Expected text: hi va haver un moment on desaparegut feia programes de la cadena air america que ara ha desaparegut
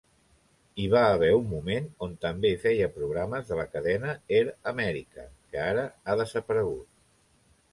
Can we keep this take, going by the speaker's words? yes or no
no